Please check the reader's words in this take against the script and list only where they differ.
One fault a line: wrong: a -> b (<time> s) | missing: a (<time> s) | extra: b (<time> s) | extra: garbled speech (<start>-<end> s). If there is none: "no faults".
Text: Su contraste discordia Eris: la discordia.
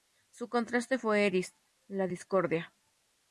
wrong: discordia -> fue (1.0 s)